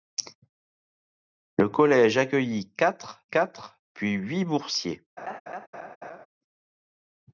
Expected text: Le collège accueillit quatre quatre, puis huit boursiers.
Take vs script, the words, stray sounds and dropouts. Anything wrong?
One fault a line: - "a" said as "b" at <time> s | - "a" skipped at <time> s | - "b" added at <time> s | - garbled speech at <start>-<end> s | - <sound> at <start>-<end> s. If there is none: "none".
- laugh at 5.2-6.3 s